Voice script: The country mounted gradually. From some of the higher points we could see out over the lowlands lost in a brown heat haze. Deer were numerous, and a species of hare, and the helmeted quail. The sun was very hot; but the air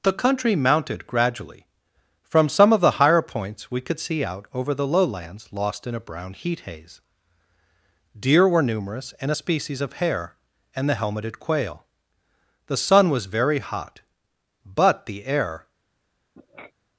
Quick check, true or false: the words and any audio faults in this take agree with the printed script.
false